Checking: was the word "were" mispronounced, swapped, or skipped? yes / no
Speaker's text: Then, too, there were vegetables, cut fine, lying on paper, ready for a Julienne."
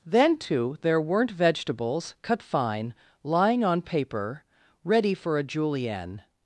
yes